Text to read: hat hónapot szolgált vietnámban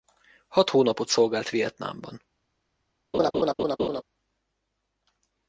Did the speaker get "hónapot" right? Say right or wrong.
right